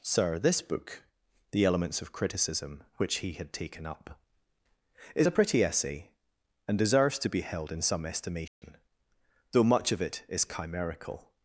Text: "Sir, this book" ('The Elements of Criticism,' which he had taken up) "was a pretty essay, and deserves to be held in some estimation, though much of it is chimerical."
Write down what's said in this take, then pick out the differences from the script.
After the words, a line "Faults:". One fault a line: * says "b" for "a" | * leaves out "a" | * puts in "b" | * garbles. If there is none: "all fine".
"Sir, this book" ('The Elements of Criticism,' which he had taken up) "is a pretty essay, and deserves to be held in some estimation, though much of it is chimerical."
Faults:
* says "is" for "was"